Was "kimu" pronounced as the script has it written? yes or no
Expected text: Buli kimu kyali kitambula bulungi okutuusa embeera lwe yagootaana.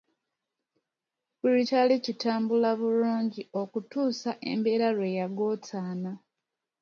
no